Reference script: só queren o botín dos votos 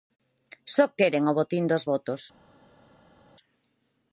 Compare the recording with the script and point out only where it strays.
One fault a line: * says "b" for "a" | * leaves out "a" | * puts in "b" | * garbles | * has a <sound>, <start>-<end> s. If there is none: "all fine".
all fine